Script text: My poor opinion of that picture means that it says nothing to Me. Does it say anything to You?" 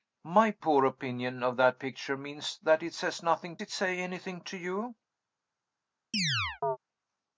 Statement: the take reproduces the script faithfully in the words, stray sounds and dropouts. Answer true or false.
false